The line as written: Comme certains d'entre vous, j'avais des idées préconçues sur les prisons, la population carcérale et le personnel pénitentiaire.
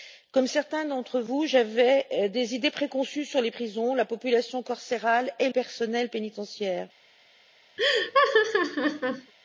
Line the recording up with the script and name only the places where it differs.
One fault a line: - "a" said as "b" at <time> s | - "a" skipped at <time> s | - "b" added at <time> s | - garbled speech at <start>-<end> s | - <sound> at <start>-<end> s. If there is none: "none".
- "le" skipped at 5.5 s
- laugh at 7.8-9.3 s